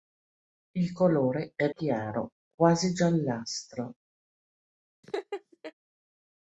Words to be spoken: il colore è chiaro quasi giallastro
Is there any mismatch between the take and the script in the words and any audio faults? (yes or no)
yes